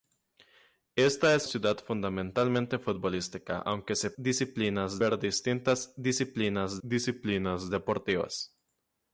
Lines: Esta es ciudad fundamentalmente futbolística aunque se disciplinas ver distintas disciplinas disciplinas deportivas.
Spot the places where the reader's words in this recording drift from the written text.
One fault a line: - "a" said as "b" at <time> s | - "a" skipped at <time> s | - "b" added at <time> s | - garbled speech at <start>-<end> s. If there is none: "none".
none